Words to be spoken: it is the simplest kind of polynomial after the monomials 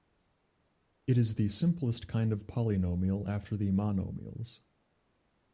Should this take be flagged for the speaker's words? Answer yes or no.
no